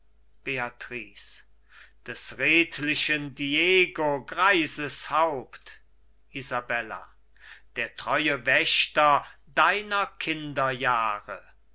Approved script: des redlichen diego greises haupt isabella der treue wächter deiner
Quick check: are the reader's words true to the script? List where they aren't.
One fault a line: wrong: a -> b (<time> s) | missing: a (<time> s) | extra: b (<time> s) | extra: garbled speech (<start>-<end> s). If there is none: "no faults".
no faults